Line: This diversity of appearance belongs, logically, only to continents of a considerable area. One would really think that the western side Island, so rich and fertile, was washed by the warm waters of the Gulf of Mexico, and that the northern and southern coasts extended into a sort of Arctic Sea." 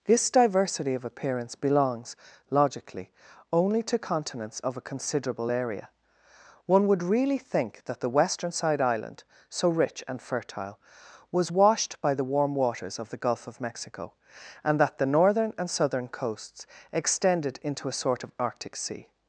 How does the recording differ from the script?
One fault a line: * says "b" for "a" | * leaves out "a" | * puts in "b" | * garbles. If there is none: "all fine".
all fine